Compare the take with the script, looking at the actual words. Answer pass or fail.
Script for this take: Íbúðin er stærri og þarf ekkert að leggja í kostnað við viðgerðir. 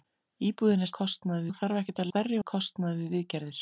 fail